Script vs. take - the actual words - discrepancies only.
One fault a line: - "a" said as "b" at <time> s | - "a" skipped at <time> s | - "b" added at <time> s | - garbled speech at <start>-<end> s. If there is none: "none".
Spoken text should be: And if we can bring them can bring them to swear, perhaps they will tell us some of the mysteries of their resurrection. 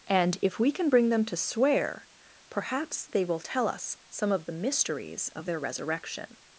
- "can bring them" skipped at 1.2 s